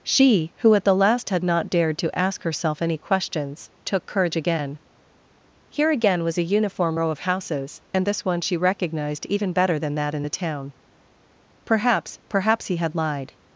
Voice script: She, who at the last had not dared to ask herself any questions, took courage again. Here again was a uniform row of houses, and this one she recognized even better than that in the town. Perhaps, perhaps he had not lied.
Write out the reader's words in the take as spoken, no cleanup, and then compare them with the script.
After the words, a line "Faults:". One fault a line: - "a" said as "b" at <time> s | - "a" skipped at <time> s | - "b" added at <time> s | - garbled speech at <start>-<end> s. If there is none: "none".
She, who at the last had not dared to ask herself any questions, took courage again. Here again was a uniform row of houses, and this one she recognized even better than that in the town. Perhaps, perhaps he had lied.
Faults:
- "not" skipped at 12.9 s